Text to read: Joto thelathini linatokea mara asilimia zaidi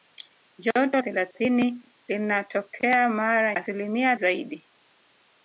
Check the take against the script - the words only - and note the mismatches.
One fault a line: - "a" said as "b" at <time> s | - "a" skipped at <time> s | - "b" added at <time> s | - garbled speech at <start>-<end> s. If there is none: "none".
none